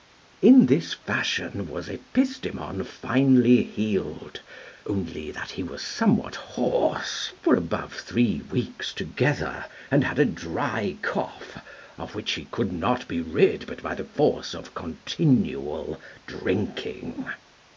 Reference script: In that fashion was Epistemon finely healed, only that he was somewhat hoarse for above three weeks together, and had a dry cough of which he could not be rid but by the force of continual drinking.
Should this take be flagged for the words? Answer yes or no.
yes